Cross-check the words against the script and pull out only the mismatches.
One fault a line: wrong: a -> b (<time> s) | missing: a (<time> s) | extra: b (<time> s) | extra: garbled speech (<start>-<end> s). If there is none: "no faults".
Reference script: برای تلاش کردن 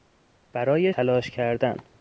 no faults